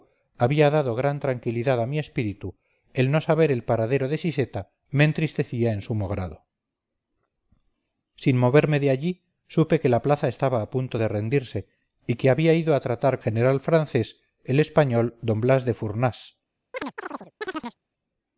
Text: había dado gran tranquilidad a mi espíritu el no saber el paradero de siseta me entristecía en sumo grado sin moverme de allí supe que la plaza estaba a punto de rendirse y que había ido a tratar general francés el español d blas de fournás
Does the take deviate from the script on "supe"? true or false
false